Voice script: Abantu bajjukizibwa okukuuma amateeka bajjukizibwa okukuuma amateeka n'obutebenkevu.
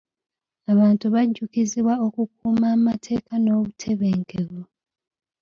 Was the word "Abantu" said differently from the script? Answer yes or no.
no